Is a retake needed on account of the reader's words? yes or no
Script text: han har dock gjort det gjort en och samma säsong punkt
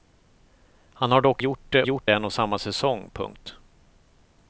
no